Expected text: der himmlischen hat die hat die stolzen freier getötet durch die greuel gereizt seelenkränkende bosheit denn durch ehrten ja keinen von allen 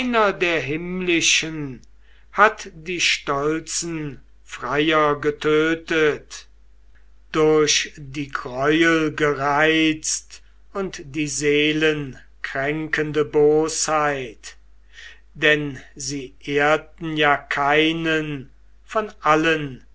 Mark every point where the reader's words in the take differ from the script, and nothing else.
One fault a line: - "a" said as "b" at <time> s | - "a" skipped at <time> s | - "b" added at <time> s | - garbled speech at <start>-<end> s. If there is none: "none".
- "hat die" skipped at 3.0 s
- "und die" added at 10.7 s
- "durch" said as "sie" at 16.0 s